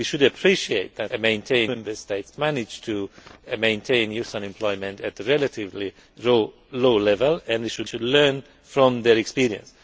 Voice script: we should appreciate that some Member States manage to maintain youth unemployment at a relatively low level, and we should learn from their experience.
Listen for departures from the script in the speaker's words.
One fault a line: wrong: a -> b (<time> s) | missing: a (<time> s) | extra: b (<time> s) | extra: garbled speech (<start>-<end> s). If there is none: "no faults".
wrong: some -> maintain (1.2 s)
extra: should (7.8 s)